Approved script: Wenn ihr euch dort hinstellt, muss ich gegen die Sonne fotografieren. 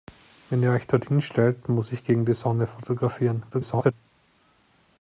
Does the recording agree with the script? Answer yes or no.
no